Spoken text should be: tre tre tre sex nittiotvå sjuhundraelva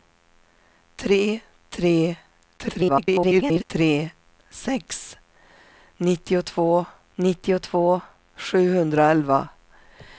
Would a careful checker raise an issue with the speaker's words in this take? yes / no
yes